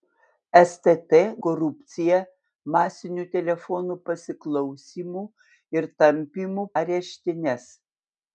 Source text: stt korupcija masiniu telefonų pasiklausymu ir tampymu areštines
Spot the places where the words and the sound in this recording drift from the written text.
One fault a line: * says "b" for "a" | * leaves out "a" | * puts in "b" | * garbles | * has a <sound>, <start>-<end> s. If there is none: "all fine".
all fine